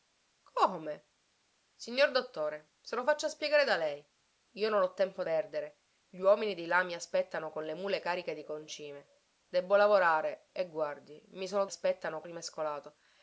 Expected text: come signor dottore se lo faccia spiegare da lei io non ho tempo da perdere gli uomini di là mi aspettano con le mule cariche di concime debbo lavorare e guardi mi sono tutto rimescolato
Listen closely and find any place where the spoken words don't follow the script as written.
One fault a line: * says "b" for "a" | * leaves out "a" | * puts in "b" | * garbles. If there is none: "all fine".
* leaves out "da"
* says "aspettano" for "tutto"